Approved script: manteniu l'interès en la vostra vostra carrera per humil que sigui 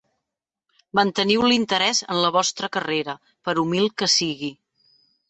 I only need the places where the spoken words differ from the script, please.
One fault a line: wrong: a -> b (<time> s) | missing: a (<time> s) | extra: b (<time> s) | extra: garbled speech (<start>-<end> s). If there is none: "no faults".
missing: vostra (2.7 s)